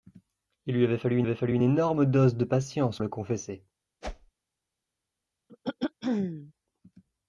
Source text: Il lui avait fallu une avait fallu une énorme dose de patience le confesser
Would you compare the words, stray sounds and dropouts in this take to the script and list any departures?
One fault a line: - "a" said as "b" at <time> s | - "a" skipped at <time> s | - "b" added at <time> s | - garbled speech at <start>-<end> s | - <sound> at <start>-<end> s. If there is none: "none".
- whoosh at 4.0-4.3 s
- throat clearing at 5.5-6.5 s